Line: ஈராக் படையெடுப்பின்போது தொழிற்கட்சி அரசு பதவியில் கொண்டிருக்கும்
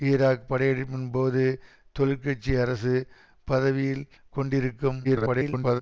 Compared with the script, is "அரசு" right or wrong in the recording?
right